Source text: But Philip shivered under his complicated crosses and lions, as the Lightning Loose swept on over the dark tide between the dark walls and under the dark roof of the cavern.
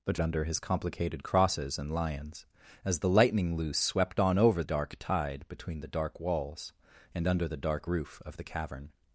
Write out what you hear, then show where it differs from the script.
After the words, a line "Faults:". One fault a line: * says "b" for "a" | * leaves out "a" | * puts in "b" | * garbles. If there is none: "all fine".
But Under his complicated crosses and lions, as the Lightning Loose swept on over dark tide between the dark walls and under the dark roof of the cavern.
Faults:
* leaves out "Philip shivered"
* leaves out "the"